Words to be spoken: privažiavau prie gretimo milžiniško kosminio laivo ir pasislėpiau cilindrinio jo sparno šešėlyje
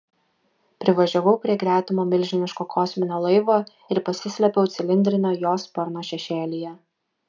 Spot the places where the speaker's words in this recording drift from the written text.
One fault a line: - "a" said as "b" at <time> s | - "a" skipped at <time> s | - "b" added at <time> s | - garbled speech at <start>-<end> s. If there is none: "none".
none